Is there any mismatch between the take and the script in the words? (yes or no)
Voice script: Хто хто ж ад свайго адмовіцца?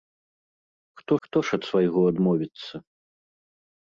no